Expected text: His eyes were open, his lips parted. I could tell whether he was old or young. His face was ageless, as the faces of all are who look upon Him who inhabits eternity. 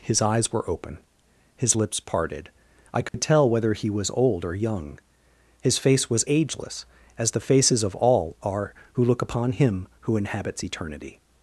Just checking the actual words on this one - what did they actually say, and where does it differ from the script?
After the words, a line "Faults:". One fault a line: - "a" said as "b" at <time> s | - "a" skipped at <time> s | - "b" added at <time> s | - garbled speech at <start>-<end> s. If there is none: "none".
His eyes were open, his lips parted. I could tell whether he was old or young. His face was ageless, as the faces of all are who look upon Him who inhabits eternity.
Faults:
none